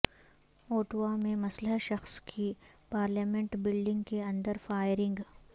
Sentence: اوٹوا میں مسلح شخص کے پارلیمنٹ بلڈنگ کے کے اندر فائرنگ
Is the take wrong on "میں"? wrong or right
right